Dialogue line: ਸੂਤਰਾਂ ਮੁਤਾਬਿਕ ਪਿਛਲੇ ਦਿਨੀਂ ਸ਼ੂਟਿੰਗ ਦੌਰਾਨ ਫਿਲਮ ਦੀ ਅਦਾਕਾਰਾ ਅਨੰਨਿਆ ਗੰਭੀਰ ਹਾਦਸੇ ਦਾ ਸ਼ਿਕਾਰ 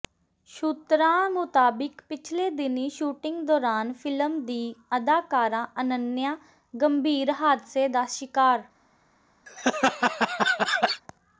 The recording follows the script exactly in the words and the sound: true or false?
false